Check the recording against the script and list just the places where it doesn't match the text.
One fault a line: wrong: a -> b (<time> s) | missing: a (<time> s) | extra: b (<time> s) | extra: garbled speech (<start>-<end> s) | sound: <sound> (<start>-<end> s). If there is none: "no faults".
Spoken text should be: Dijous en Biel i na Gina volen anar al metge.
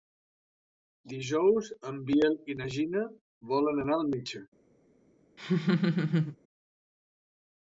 sound: laugh (5.4-6.4 s)